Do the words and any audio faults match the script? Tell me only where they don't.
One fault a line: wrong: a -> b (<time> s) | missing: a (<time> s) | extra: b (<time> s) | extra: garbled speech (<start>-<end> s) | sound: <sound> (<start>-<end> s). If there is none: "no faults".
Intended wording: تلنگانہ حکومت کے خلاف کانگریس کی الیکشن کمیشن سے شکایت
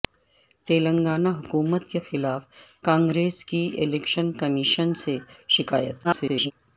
extra: garbled speech (6.0-6.5 s)